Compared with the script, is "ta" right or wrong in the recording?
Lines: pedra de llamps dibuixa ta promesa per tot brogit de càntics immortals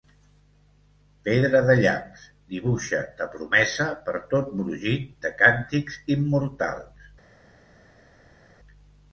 right